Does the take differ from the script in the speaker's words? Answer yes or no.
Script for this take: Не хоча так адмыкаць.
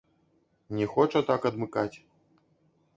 no